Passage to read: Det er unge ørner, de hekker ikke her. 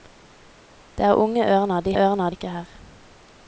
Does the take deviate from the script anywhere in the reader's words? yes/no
yes